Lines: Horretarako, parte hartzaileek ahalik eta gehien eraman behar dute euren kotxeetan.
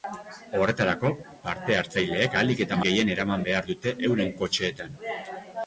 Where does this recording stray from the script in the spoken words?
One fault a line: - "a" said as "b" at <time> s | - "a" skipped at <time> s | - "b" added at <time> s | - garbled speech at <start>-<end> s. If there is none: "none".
none